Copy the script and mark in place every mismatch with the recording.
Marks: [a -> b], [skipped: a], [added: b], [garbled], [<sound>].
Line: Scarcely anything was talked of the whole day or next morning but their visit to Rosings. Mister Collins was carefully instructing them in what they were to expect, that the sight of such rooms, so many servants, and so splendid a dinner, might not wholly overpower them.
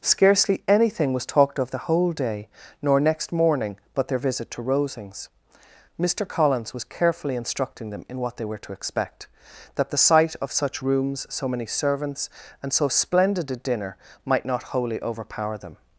Scarcely anything was talked of the whole day [or -> nor] next morning but their visit to Rosings. Mister Collins was carefully instructing them in what they were to expect, that the sight of such rooms, so many servants, and so splendid a dinner, might not wholly overpower them.